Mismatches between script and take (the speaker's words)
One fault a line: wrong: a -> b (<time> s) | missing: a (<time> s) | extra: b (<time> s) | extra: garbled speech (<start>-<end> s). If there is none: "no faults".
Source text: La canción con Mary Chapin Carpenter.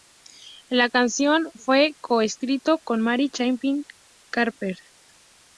extra: fue co escrito (1.5 s)